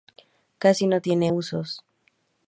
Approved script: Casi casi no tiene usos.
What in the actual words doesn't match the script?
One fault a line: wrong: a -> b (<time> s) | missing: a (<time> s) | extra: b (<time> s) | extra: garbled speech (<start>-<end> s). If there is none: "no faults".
missing: casi (0.9 s)